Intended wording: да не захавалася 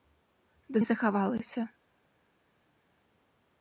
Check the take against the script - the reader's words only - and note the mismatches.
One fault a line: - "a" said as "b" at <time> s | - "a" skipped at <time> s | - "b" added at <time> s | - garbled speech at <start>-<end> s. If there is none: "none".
none